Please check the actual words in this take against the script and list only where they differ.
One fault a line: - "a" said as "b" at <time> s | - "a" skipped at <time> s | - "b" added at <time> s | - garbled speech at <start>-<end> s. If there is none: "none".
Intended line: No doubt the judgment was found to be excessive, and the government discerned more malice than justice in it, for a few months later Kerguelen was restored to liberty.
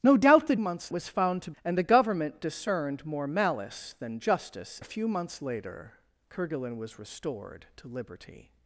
- "judgment" said as "months" at 0.6 s
- "be excessive" skipped at 1.5 s
- "in it for" skipped at 4.8 s